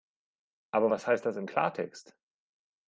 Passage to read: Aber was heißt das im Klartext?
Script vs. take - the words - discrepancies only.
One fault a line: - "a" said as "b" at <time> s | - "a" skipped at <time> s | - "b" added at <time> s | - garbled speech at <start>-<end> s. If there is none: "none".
none